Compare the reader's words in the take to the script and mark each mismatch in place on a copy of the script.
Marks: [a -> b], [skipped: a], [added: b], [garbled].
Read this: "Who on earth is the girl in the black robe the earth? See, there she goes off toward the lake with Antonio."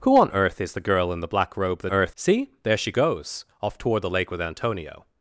"Who on earth is the girl in the black robe the earth? See, there she goes off toward the lake with Antonio."